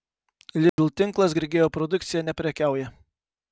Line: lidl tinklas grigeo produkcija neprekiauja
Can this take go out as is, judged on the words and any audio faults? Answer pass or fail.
fail